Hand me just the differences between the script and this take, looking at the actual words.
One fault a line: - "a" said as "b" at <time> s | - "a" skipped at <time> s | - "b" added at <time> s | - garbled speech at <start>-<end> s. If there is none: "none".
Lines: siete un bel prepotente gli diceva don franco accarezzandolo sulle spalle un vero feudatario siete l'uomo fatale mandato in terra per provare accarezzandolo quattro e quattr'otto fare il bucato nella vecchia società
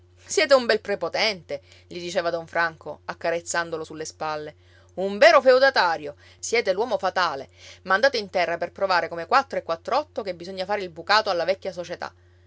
- "accarezzandolo" said as "come" at 9.1 s
- "che bisogna" added at 10.2 s
- "nella" said as "alla" at 11.3 s